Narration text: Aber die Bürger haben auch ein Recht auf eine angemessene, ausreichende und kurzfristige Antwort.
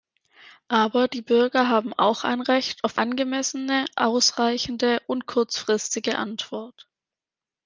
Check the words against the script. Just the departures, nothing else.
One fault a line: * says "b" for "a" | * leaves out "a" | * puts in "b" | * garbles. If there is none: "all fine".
* leaves out "eine"